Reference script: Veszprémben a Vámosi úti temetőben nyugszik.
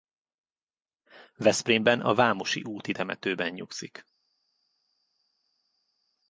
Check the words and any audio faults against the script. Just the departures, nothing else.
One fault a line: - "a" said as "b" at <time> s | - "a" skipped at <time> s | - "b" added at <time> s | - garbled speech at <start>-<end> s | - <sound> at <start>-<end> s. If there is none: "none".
none